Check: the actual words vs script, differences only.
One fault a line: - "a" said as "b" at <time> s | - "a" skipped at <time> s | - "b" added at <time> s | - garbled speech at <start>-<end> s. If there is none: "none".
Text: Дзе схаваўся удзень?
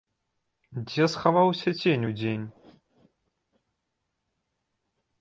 - "цень" added at 1.8 s